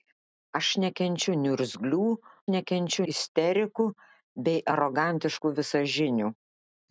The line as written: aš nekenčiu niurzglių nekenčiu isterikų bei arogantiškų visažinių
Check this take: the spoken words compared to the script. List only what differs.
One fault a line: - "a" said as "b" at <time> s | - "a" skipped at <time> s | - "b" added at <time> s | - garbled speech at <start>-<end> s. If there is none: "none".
none